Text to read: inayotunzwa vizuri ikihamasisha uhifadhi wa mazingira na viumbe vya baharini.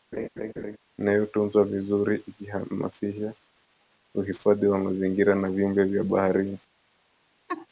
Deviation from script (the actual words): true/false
false